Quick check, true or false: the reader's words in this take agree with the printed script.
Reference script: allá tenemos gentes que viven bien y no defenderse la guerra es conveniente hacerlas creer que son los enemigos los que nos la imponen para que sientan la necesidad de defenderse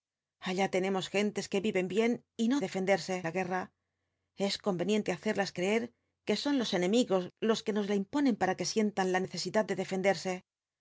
true